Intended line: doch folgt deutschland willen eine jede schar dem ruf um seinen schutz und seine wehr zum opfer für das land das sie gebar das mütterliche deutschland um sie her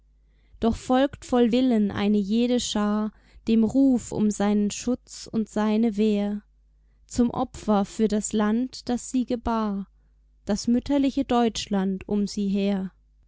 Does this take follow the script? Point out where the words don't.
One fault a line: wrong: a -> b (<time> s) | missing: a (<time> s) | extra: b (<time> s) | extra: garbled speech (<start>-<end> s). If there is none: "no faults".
wrong: deutschland -> voll (1.2 s)